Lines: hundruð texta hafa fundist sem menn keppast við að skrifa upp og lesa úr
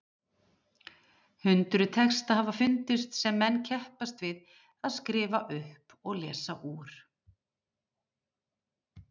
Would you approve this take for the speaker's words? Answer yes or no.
yes